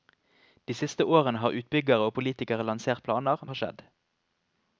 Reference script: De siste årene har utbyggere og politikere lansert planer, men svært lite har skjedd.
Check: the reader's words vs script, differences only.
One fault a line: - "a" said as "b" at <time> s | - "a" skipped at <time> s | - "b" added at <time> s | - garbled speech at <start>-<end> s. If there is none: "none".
- "men svært lite" skipped at 3.4 s